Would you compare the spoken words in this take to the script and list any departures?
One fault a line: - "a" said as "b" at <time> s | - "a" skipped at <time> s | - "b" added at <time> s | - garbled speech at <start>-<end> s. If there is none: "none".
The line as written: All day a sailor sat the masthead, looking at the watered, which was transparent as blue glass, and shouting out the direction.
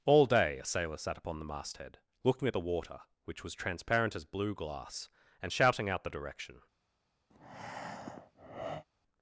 - "upon" added at 1.2 s
- "watered" said as "water" at 2.6 s